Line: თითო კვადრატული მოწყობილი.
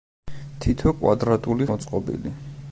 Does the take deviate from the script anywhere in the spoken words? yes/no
no